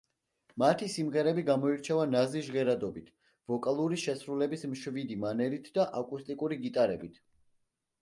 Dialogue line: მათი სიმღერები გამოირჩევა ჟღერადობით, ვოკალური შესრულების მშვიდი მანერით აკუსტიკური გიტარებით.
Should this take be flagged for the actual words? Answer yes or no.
yes